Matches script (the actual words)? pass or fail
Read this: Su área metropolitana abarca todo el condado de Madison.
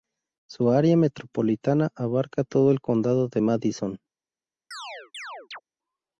pass